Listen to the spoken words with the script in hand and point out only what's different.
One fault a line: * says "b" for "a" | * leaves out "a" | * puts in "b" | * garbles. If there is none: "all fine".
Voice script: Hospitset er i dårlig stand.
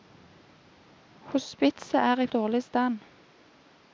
all fine